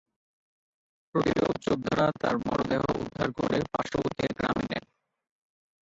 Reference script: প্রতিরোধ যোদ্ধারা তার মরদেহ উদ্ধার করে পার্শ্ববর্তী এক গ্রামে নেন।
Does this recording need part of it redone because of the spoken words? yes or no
no